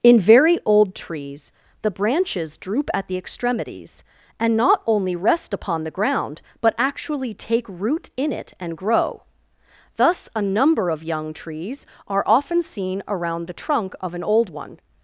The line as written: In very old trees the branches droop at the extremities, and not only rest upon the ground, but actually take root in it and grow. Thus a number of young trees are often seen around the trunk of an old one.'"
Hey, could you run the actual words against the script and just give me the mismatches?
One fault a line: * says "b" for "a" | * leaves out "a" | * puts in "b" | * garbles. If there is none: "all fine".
all fine